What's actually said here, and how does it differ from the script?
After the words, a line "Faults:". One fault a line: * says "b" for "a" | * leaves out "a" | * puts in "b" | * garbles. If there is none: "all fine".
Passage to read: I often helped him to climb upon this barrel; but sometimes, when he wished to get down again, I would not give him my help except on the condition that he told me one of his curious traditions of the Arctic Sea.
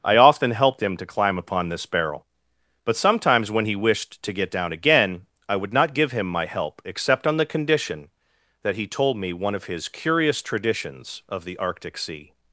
I often helped him to climb upon this barrel; but sometimes, when he wished to get down again, I would not give him my help except on the condition that he told me one of his curious traditions of the Arctic Sea.
Faults:
all fine